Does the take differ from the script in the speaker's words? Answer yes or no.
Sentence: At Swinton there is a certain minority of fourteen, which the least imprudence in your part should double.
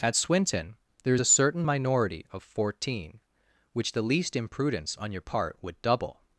yes